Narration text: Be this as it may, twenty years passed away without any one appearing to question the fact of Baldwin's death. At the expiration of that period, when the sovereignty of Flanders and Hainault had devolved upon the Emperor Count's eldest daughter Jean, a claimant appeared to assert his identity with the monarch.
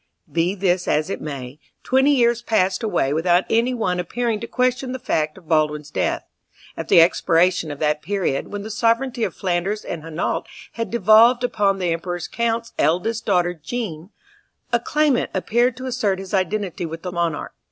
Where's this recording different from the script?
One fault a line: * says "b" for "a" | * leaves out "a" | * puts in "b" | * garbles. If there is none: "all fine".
all fine